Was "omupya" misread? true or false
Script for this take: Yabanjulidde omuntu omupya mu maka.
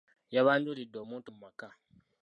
true